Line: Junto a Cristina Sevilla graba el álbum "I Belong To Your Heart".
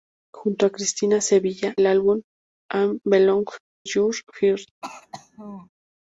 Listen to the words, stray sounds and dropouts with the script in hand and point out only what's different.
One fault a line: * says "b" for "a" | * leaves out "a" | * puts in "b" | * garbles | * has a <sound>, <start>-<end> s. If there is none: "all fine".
* leaves out "graba"
* leaves out "To"
* has a throat clearing, 4.8-5.7 s